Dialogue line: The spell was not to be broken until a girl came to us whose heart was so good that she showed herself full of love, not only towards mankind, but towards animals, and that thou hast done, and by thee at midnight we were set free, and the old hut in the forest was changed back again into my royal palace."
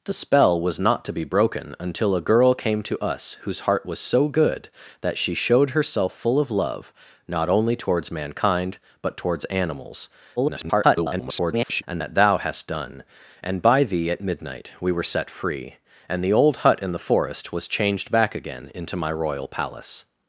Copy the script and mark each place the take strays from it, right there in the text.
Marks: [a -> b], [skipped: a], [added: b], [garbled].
The spell was not to be broken until a girl came to us whose heart was so good that she showed herself full of love, not only towards mankind, but towards animals, [garbled] and that thou hast done, and by thee at midnight we were set free, and the old hut in the forest was changed back again into my royal palace."